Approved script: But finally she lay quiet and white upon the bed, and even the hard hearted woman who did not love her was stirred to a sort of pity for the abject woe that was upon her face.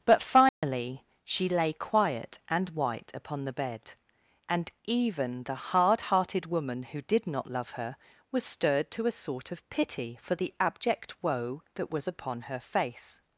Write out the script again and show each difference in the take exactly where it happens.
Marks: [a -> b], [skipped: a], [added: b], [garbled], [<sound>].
But finally [dropout] she lay quiet and white upon the bed, and even the hard hearted woman who did not love her was stirred to a sort of pity for the abject woe that was upon her face.